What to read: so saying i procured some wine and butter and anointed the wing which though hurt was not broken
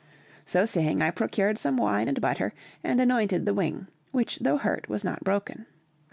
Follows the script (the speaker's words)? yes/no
yes